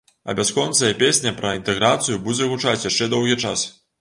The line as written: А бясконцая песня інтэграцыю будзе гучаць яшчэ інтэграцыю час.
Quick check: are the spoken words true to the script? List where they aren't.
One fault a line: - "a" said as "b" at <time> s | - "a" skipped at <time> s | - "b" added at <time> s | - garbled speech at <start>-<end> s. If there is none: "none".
- "пра" added at 1.4 s
- "інтэграцыю" said as "доўгі" at 3.2 s